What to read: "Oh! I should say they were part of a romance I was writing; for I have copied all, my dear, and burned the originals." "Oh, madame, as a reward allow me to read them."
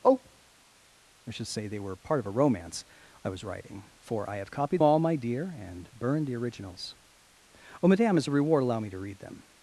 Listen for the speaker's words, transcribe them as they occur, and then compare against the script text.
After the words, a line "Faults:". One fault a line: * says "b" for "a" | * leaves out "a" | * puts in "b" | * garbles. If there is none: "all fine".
"Oh! I should say they were part of a romance I was writing; for I have copied all, my dear, and burned the originals." "Oh, madame, as a reward allow me to read them."
Faults:
all fine